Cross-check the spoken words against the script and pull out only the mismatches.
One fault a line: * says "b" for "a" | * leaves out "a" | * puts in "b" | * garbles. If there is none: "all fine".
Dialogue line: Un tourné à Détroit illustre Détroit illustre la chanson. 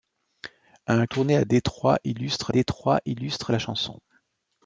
all fine